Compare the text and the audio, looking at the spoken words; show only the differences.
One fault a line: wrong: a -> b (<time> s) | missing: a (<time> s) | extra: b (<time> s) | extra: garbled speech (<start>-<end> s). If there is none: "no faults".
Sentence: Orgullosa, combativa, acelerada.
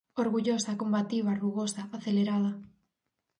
extra: rugosa (1.4 s)